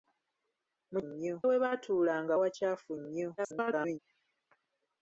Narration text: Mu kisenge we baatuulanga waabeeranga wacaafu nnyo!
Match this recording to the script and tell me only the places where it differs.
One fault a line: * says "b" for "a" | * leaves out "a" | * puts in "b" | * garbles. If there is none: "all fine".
* says "nnyo" for "kisenge"
* leaves out "waabeeranga"
* garbles